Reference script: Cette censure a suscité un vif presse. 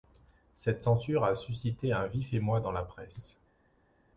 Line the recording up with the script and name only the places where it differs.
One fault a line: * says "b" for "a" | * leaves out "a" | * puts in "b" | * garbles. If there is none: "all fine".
* puts in "émoi dans la"